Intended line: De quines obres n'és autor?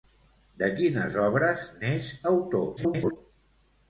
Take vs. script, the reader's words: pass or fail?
fail